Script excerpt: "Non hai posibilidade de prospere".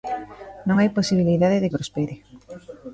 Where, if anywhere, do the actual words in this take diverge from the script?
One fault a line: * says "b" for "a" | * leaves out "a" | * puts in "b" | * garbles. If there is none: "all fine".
all fine